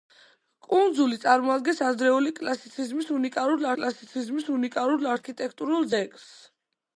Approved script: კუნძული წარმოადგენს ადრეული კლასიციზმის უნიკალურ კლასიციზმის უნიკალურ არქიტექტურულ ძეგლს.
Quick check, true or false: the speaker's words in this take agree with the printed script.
true